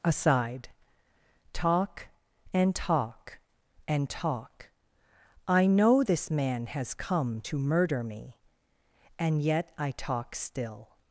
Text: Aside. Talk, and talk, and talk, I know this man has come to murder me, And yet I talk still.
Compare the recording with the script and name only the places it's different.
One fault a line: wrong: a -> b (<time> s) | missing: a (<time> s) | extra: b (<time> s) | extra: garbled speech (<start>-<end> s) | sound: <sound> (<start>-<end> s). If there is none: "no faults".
no faults